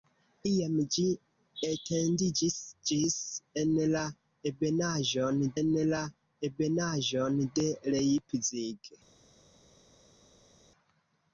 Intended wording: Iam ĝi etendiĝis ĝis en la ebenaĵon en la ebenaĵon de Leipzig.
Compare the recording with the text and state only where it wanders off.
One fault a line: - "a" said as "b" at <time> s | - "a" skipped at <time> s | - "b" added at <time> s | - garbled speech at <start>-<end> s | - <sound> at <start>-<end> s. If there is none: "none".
none